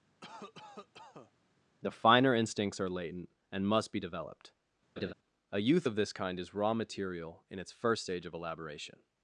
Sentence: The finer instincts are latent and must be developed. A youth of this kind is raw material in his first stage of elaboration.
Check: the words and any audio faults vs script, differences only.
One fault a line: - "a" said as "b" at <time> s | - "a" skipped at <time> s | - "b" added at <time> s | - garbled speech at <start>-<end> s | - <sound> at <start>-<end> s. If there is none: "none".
- cough at 0.2-1.3 s
- laugh at 5.0-5.1 s
- "his" said as "its" at 7.6 s